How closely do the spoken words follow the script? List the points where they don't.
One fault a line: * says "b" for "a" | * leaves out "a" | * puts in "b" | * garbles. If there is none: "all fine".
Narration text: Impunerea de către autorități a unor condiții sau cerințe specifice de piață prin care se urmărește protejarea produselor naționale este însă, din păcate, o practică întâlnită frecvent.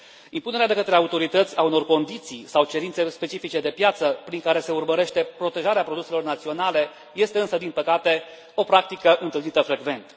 all fine